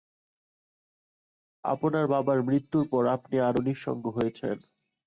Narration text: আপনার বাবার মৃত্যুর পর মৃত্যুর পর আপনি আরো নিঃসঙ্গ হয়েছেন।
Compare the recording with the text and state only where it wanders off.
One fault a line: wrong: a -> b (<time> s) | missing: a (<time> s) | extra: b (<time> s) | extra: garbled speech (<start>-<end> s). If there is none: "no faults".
missing: মৃত্যুর পর (3.0 s)